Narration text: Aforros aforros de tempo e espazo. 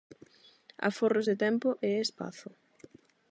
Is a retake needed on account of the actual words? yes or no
yes